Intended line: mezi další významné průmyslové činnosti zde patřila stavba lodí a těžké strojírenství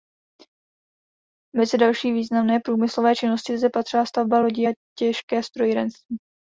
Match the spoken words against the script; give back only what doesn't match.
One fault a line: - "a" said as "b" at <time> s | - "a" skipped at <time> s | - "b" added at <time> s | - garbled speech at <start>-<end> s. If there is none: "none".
none